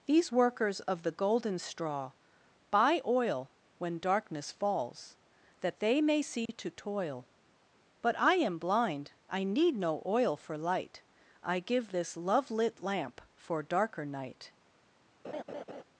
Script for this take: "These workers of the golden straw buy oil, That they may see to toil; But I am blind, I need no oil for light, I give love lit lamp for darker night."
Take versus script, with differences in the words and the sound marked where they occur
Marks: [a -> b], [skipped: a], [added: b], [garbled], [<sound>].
"These workers of the golden straw buy oil, [added: When darkness falls] That they may see [dropout] to toil; But I am blind, I need no oil for light, I give [added: this] love lit lamp for darker night." [laugh]